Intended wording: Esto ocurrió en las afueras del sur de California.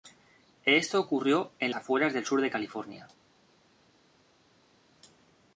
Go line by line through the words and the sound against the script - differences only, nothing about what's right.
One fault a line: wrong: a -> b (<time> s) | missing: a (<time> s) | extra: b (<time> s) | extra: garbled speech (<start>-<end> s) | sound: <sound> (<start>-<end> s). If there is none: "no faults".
missing: las (1.7 s)